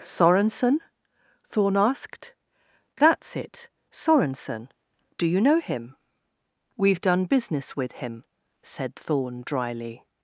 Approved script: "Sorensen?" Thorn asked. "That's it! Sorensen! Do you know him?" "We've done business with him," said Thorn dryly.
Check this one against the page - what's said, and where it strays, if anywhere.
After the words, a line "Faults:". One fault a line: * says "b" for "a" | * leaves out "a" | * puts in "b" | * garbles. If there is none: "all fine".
"Sorensen?" Thorn asked. "That's it! Sorensen! Do you know him?" "We've done business with him," said Thorn dryly.
Faults:
all fine